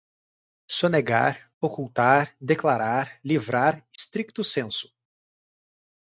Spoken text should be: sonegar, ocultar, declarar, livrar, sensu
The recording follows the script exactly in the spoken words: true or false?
false